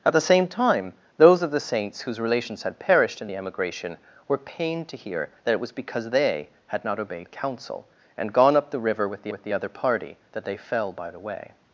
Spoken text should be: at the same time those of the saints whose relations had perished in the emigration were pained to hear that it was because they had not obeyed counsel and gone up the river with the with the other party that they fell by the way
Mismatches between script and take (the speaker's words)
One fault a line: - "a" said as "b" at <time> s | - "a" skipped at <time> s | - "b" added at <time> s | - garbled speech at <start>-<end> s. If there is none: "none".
none